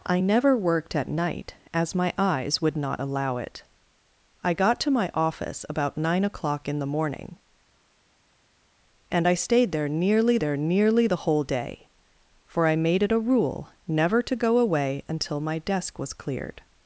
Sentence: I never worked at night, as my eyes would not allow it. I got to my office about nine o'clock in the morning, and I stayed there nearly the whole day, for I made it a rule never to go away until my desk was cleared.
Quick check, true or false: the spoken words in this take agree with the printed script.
false